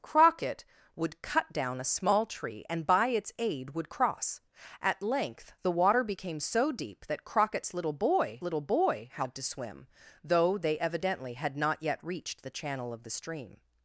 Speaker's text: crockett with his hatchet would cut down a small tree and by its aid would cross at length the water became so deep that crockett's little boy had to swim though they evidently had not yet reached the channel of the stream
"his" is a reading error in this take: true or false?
true